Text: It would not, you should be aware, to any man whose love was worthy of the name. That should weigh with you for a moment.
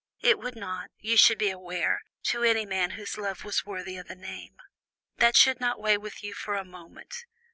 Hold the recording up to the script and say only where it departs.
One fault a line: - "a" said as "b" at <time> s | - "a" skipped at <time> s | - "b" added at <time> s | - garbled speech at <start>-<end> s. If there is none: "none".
- "not" added at 5.6 s